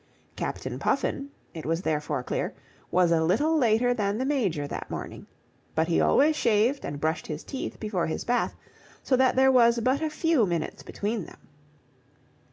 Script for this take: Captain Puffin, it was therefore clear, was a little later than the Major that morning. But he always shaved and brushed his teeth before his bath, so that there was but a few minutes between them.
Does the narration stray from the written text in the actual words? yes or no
no